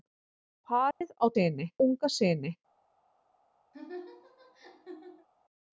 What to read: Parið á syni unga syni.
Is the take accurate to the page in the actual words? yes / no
yes